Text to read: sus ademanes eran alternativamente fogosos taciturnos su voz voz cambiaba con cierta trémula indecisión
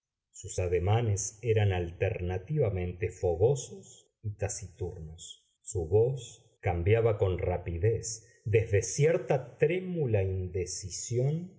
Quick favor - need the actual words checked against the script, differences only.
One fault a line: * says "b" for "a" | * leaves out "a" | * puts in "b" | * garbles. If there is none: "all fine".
* puts in "y"
* leaves out "voz"
* puts in "rapidez desde"